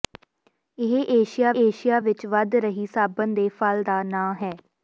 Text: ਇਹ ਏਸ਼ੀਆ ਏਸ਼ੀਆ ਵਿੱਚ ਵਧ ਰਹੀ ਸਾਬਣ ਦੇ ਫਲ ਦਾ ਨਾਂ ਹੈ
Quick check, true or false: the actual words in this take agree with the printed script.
true